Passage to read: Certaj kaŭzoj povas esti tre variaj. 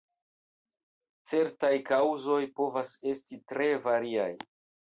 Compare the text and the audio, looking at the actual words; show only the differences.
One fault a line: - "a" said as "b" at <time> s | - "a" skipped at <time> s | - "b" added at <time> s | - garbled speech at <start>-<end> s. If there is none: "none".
none